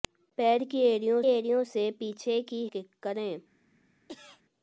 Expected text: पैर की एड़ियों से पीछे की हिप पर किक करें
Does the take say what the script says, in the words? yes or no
no